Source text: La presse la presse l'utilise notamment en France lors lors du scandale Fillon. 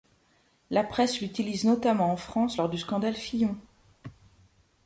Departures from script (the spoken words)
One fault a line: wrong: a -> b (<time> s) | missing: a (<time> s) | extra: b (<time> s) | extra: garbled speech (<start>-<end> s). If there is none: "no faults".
missing: la presse (1.2 s)
missing: lors (2.7 s)